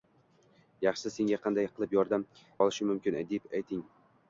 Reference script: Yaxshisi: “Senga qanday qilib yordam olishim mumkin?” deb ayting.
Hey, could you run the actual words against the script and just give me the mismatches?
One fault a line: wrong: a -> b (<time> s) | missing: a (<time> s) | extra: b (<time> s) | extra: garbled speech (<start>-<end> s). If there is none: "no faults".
no faults